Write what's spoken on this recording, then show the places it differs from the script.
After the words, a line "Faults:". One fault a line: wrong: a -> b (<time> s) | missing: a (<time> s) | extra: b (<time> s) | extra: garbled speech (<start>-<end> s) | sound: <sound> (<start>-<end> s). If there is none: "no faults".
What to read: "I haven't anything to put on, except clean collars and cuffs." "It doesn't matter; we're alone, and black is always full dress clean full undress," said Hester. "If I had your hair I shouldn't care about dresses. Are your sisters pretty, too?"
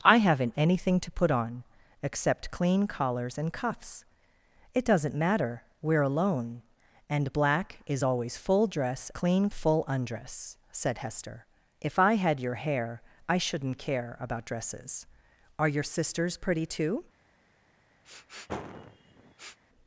"I haven't anything to put on, except clean collars and cuffs." "It doesn't matter; we're alone, and black is always full dress clean full undress," said Hester. "If I had your hair I shouldn't care about dresses. Are your sisters pretty, too?"
Faults:
sound: sniff (18.0-19.6 s)